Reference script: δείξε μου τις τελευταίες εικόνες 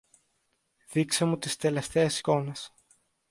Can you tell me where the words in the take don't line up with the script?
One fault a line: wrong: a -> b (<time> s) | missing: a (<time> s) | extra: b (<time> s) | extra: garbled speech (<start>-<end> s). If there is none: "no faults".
no faults